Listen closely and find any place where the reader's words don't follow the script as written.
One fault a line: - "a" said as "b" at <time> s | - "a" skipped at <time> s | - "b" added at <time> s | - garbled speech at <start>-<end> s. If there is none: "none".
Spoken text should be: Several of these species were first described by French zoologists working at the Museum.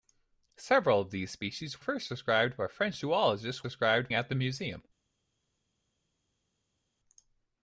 - "were" skipped at 1.8 s
- "working" said as "described" at 3.6 s